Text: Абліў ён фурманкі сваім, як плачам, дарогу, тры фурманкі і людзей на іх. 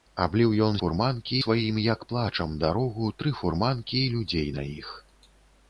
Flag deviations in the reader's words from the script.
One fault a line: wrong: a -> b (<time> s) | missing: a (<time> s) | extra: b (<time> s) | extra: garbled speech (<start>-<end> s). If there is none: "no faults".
no faults